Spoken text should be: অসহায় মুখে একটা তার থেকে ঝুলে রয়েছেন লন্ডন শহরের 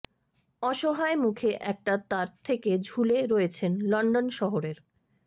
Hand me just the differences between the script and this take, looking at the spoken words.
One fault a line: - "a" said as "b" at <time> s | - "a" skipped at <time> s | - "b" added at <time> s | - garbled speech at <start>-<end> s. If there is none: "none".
none